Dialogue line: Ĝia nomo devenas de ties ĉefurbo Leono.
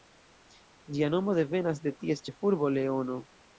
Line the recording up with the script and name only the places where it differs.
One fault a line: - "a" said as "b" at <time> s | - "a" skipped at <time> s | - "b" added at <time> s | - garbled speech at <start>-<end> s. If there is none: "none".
none